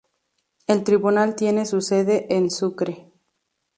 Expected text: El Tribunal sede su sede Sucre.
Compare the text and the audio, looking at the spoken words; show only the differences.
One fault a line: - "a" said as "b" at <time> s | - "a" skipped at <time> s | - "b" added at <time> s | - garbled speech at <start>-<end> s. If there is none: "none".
- "sede" said as "tiene" at 1.4 s
- "en" added at 2.4 s